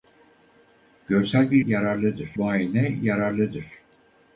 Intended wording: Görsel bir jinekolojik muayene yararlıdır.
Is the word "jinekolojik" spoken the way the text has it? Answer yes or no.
no